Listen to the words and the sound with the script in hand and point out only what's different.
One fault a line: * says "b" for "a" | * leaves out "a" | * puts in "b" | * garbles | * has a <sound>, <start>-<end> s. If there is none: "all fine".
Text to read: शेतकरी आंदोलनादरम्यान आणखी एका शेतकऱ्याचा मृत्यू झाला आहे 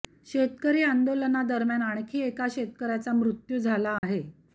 * has a dropout, 4.0-4.0 s